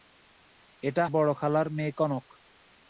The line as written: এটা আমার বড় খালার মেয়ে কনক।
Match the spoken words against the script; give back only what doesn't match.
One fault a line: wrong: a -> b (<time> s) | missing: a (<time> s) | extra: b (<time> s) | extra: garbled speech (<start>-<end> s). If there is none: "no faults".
missing: আমার (1.0 s)